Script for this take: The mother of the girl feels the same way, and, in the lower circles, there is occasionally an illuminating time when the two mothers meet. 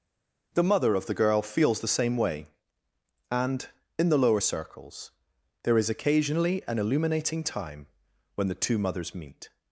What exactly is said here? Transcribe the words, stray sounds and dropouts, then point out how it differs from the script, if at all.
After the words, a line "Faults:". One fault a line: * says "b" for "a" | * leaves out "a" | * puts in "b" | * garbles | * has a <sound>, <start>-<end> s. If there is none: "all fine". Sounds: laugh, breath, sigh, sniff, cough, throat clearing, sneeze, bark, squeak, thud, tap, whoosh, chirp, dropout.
The mother of the girl feels the same way, and, in the lower circles, there is occasionally an illuminating time when the two mothers meet.
Faults:
all fine